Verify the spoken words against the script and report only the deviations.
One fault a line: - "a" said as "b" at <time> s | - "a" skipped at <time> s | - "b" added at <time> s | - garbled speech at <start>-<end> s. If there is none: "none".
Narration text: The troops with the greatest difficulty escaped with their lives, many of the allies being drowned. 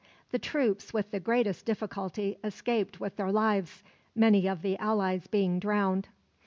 none